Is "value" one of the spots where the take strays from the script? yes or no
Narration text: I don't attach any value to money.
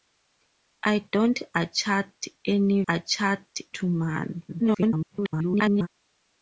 yes